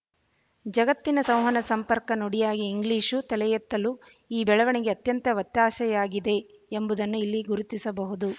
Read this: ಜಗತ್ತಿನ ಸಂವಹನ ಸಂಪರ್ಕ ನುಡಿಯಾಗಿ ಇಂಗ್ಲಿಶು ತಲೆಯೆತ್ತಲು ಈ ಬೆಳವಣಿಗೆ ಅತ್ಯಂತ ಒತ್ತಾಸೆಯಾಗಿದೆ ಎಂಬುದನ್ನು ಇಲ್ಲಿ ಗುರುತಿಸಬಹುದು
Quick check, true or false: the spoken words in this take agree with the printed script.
true